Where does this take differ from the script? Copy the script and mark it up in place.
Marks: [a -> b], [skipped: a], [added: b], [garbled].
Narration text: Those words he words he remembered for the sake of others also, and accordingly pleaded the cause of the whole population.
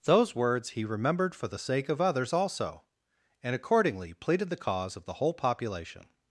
Those words he [skipped: words he] remembered for the sake of others also, and accordingly pleaded the cause of the whole population.